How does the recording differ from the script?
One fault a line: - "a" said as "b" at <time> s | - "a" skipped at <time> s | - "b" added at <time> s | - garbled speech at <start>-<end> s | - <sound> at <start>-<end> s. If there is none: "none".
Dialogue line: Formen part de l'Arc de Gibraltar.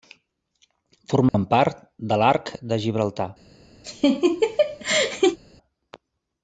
- dropout at 1.3-1.3 s
- laugh at 3.8-5.4 s